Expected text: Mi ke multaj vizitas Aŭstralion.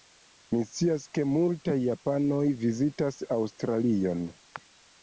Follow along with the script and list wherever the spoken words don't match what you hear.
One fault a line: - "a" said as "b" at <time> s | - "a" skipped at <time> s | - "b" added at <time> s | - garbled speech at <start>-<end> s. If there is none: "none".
- "scias" added at 0.7 s
- "japanoj" added at 1.8 s